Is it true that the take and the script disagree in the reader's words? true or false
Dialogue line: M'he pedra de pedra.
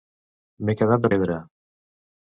true